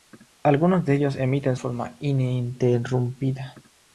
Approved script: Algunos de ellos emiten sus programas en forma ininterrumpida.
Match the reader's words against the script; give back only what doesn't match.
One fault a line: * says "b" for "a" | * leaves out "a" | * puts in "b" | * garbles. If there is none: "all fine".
* leaves out "sus programas en"